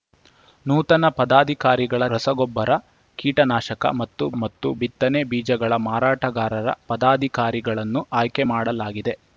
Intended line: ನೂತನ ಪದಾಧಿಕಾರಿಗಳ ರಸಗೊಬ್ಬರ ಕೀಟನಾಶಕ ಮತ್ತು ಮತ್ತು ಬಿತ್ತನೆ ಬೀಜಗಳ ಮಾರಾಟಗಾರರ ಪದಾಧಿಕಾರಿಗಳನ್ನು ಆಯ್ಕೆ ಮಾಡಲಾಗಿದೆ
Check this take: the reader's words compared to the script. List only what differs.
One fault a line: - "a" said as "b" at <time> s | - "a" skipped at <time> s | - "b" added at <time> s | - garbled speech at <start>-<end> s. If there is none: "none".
none